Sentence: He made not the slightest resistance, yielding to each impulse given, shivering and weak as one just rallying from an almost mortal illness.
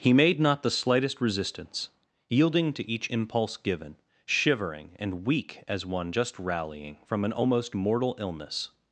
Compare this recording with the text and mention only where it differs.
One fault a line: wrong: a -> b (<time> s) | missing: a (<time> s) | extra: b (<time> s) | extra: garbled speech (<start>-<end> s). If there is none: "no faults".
no faults